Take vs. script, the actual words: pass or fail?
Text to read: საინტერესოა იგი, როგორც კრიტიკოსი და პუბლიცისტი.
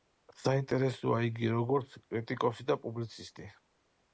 pass